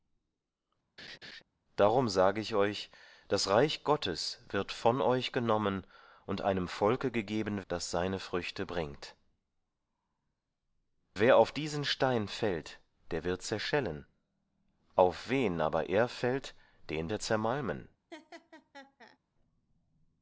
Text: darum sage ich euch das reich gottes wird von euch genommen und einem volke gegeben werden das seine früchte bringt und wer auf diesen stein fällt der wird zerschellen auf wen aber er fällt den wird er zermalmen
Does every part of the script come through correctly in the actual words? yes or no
no